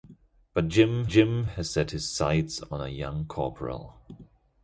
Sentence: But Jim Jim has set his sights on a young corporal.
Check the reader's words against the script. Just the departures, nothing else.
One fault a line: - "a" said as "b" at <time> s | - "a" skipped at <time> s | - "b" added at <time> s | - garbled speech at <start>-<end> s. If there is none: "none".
none